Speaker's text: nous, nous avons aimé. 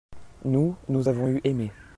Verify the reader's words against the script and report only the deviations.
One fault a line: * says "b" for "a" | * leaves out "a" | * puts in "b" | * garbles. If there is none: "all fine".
* puts in "eu"